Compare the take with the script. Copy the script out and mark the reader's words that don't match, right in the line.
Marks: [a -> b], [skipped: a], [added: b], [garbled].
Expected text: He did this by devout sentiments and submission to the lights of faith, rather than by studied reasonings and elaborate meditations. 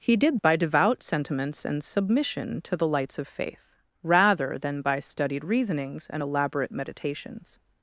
He did [skipped: this] by devout sentiments and submission to the lights of faith, rather than by studied reasonings and elaborate meditations.